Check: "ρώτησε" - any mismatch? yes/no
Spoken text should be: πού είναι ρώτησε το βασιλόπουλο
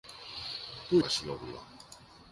yes